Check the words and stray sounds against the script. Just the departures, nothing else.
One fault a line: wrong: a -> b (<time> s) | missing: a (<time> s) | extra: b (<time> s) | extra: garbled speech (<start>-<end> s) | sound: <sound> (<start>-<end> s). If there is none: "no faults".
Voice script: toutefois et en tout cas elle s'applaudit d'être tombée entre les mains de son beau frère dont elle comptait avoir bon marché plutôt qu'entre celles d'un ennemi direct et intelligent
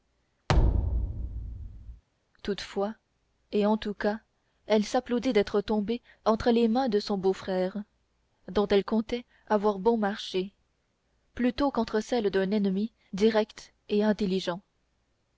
sound: thud (0.5-2.0 s)